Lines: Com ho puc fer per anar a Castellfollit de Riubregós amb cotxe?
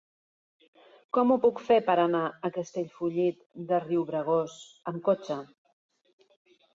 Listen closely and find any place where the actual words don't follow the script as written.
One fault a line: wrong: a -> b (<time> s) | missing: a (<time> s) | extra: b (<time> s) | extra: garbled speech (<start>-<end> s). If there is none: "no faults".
no faults